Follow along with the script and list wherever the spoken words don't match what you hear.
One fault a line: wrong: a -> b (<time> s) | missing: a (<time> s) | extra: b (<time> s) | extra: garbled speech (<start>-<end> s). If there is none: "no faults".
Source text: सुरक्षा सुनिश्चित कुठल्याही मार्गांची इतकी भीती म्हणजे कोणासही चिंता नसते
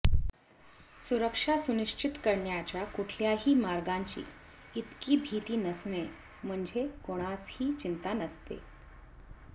extra: करण्याच्या (2.2 s)
extra: नसणे (5.6 s)